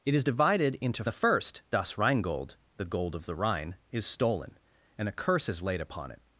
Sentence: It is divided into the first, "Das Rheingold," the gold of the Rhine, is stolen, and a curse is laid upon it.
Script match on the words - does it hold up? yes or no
yes